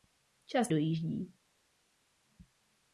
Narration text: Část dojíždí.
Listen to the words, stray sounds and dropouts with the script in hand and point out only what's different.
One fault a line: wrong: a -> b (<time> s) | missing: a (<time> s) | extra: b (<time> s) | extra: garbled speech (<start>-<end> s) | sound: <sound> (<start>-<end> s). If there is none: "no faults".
no faults